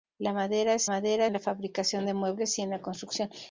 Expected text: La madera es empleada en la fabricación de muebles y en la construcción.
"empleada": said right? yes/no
no